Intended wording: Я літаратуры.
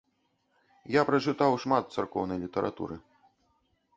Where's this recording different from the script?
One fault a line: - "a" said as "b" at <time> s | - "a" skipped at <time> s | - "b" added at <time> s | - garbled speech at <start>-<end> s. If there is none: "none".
- "прачытаў шмат царкоўнай" added at 1.1 s